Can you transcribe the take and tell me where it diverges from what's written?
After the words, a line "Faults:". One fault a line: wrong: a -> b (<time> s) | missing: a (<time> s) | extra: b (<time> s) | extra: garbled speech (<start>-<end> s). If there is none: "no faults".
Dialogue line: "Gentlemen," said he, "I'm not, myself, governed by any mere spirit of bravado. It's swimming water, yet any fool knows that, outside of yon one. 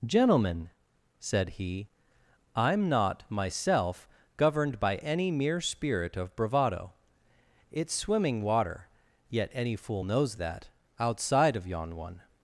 "Gentlemen," said he, "I'm not, myself, governed by any mere spirit of bravado. It's swimming water, yet any fool knows that, outside of yon one.
Faults:
no faults